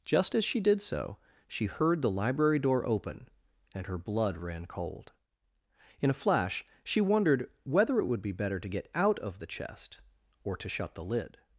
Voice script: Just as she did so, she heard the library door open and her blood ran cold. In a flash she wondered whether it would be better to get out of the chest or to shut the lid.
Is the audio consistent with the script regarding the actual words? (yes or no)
yes